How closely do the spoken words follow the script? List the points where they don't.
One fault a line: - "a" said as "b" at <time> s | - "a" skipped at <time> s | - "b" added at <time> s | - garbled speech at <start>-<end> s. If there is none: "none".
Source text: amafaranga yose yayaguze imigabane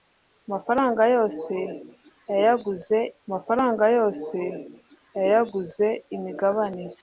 - "amafaranga yose yayaguze" added at 3.3 s